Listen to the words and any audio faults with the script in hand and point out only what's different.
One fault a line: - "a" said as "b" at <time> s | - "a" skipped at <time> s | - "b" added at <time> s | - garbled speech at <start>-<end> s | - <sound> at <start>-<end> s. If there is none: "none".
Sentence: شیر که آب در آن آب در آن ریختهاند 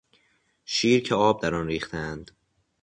- "آب در آن" skipped at 1.7 s